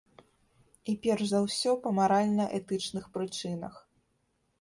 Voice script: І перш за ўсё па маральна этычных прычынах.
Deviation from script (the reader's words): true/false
false